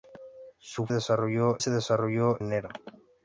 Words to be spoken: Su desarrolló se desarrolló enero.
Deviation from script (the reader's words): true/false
false